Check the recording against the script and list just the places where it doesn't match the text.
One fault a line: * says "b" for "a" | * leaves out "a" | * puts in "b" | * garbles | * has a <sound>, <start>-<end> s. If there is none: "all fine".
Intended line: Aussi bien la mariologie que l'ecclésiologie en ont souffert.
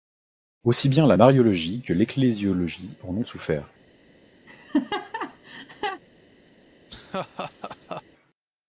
* has a laugh, 4.5-6.0 s
* has a laugh, 6.9-8.0 s